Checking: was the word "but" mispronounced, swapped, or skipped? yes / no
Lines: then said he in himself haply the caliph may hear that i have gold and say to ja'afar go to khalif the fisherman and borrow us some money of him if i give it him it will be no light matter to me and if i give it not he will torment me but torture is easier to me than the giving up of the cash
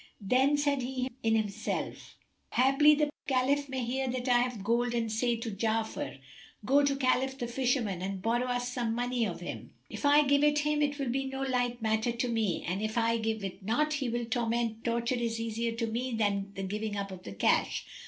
yes